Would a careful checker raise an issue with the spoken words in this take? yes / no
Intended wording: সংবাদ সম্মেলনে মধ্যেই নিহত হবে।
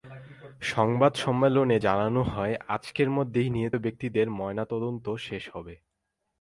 yes